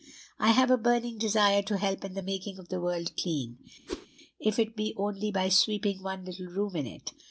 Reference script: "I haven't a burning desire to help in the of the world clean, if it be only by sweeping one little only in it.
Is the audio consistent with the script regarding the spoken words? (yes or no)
no